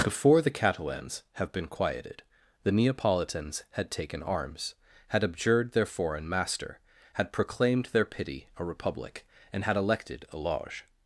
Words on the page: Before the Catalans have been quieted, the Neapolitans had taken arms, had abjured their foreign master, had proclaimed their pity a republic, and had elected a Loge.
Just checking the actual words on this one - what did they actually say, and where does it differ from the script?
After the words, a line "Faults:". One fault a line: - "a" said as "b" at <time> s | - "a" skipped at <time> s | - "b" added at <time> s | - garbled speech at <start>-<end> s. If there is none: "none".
Before the Catalans have been quieted, the Neapolitans had taken arms, had abjured their foreign master, had proclaimed their pity a republic, and had elected a Loge.
Faults:
none